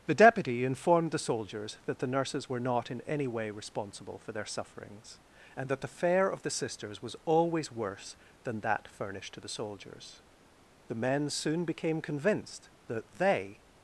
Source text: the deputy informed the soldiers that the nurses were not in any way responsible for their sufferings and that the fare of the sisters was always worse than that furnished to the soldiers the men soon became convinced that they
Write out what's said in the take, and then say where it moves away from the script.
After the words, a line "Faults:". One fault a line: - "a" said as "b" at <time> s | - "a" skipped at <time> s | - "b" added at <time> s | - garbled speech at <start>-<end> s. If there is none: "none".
the deputy informed the soldiers that the nurses were not in any way responsible for their sufferings and that the fare of the sisters was always worse than that furnished to the soldiers the men soon became convinced that they
Faults:
none